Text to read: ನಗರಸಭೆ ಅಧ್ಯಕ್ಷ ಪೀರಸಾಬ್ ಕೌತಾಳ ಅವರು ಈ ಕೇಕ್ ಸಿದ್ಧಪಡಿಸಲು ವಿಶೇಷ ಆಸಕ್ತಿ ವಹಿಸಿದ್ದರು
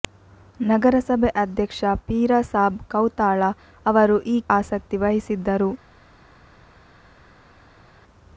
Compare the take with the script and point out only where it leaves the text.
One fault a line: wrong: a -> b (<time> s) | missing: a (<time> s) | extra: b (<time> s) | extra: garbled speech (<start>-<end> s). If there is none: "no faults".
missing: ಕೇಕ್ ಸಿದ್ಧಪಡಿಸಲು ವಿಶೇಷ (4.5 s)